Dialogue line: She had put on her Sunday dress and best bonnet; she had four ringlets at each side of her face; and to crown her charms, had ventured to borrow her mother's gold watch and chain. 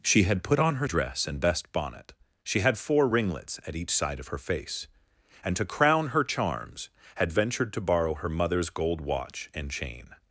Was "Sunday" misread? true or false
true